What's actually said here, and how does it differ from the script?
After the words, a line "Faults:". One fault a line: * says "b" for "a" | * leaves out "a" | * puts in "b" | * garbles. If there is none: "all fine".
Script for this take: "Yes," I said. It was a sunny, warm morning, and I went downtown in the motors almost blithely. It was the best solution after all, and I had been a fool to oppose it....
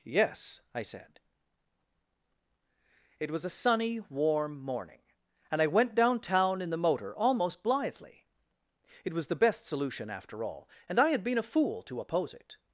"Yes," I said. It was a sunny, warm morning, and I went downtown in the motor almost blithely. It was the best solution after all, and I had been a fool to oppose it....
Faults:
* says "motor" for "motors"